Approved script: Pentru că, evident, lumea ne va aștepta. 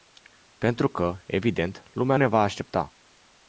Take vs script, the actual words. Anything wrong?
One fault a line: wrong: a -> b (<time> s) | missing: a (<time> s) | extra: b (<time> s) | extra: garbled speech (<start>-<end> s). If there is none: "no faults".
no faults